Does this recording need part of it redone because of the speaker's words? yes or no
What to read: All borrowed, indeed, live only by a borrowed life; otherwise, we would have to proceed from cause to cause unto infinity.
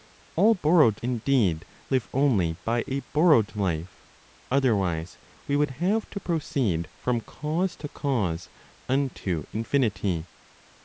no